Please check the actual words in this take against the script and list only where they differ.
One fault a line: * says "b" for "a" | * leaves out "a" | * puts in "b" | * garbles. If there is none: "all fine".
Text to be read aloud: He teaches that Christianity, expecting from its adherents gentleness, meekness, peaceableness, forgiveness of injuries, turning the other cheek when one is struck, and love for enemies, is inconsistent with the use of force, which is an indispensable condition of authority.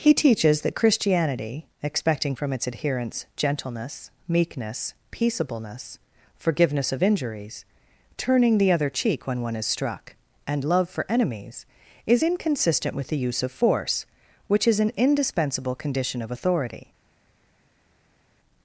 all fine